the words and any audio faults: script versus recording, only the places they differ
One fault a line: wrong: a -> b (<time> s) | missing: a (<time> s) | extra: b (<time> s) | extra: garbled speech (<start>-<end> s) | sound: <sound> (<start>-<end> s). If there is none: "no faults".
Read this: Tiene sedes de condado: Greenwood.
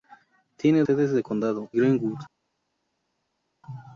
no faults